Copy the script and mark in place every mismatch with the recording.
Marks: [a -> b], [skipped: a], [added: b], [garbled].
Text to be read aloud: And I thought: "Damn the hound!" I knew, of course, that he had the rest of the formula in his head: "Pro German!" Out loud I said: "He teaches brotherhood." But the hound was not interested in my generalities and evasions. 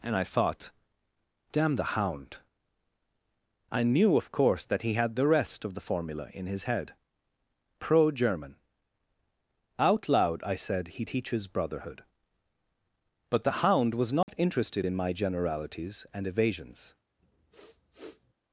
And I thought: "Damn the hound!" I knew, of course, that he had the rest of the formula in his head: "Pro German!" Out loud I said: "He teaches brotherhood." But the hound was not interested in my generalities and evasions.